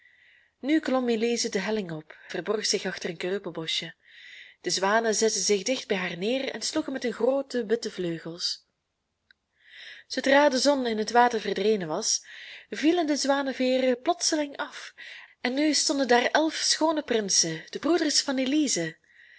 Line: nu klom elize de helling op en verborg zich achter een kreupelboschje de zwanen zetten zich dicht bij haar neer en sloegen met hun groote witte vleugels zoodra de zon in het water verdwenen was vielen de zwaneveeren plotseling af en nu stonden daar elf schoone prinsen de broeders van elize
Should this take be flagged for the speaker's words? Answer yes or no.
yes